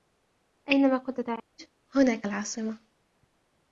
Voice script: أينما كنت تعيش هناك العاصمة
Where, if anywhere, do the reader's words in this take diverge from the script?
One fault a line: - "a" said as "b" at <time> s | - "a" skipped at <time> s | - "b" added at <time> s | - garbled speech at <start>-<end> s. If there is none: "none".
none